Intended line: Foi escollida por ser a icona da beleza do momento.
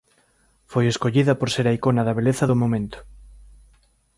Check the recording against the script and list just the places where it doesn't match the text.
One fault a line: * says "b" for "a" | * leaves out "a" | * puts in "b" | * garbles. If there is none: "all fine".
all fine